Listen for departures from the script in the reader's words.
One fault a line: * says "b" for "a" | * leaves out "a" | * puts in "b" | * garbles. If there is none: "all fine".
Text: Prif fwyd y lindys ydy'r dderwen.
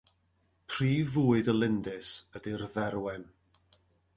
all fine